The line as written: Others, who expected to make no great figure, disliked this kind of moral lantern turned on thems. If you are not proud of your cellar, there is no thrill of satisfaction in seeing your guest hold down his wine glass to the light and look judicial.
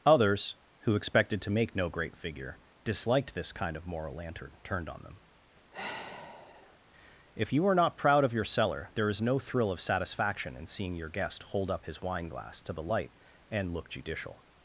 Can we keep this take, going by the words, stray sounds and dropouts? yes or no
no